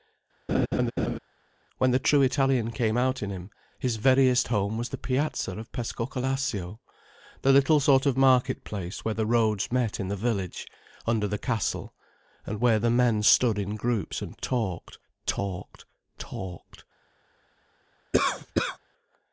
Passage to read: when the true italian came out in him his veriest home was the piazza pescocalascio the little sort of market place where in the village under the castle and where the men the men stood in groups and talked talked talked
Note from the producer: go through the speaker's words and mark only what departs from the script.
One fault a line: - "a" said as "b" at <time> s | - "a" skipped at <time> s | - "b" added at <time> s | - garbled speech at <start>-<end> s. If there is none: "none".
- "of" added at 5.6 s
- "the roads met" added at 9.1 s
- "the men" skipped at 13.2 s